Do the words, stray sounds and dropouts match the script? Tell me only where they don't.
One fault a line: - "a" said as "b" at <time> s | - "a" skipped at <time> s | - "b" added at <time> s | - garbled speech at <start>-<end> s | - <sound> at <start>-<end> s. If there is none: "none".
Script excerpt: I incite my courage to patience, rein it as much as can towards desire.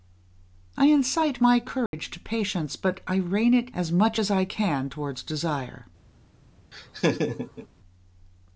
- dropout at 1.9-1.9 s
- "but I" added at 2.8 s
- "I" added at 4.3 s
- laugh at 6.7-7.7 s